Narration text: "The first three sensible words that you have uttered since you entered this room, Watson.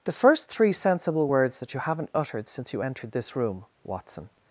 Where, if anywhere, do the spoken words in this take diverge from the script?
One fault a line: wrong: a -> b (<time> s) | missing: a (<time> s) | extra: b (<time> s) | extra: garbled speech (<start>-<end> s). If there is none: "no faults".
wrong: have -> haven't (1.8 s)